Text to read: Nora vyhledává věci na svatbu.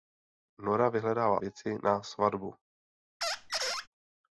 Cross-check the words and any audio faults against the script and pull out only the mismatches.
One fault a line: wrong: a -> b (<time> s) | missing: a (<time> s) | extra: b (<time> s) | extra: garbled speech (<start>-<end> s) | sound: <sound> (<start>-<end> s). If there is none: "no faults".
sound: squeak (3.2-3.9 s)